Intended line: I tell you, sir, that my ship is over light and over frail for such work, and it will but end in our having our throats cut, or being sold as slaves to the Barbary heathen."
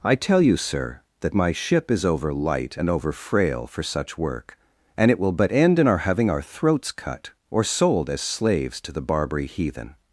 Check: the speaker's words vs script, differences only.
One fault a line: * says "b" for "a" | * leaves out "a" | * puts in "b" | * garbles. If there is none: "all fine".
* leaves out "being"